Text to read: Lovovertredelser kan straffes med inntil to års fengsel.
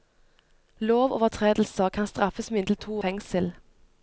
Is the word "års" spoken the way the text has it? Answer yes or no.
no